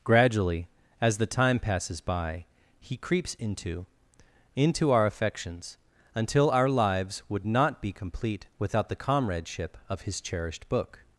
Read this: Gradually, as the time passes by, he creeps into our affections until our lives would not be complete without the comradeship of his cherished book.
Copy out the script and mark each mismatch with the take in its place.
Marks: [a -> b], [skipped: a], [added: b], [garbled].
Gradually, as the time passes by, he creeps into [added: into] our affections until our lives would not be complete without the comradeship of his cherished book.